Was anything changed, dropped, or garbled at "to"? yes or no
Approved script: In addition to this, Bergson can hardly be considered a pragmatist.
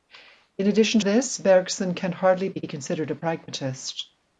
yes